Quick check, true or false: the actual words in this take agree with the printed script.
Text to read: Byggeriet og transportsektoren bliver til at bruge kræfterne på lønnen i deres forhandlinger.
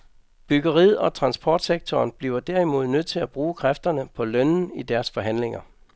false